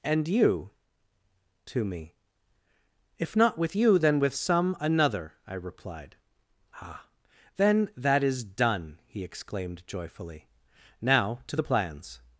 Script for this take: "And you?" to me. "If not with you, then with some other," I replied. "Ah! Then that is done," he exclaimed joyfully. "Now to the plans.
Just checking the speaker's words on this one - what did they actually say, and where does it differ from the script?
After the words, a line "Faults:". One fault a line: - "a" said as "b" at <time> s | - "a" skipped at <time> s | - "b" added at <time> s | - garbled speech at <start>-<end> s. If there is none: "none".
"And you?" to me. "If not with you, then with some another," I replied. "Ah! Then that is done," he exclaimed joyfully. "Now to the plans.
Faults:
- "other" said as "another" at 4.8 s